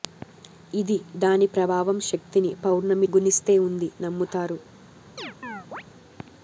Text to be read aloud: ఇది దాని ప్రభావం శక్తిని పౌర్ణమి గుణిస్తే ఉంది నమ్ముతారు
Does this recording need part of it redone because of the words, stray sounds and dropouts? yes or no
yes